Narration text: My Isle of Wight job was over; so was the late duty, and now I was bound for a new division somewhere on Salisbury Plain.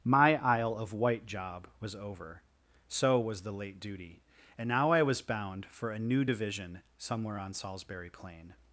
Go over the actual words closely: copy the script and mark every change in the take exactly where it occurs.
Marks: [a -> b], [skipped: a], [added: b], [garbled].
My Isle of Wight job was over; so was the late duty, and now I was bound for a new division somewhere on Salisbury Plain.